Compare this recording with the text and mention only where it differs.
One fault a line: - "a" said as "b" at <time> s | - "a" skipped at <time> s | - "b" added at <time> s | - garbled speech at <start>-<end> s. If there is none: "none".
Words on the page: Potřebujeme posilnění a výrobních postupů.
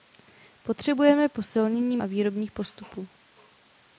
none